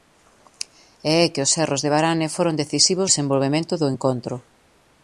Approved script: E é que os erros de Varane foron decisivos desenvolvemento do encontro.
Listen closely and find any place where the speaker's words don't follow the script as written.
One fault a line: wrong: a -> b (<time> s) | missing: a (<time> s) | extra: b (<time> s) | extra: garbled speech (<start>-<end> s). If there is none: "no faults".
no faults